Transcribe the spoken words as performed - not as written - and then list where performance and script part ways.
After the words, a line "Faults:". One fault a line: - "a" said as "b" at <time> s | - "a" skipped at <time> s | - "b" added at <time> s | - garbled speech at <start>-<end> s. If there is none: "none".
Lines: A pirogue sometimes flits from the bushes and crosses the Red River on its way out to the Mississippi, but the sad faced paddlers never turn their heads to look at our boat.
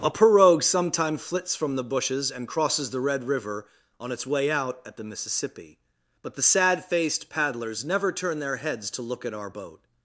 A pirogue sometime flits from the bushes and crosses the Red River on its way out at the Mississippi, but the sad faced paddlers never turn their heads to look at our boat.
Faults:
- "sometimes" said as "sometime" at 0.6 s
- "to" said as "at" at 4.9 s